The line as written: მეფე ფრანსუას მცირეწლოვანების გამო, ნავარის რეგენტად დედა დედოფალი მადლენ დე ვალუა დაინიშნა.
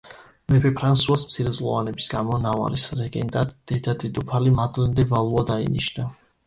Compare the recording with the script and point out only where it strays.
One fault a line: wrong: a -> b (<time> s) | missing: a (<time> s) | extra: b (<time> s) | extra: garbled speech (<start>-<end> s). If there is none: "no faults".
no faults